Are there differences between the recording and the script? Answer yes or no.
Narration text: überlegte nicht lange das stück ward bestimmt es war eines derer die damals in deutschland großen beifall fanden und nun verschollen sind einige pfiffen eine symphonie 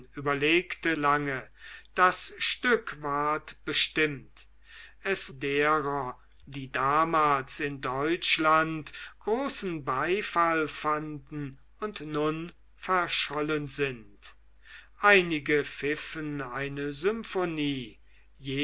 yes